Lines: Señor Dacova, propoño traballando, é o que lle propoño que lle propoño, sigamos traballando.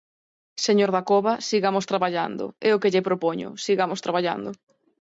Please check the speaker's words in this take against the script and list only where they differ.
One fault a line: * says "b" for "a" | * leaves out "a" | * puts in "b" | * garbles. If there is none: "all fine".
* says "sigamos" for "propoño"
* leaves out "que lle propoño"